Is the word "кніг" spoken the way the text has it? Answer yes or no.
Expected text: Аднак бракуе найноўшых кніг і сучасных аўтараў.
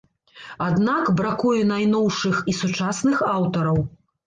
no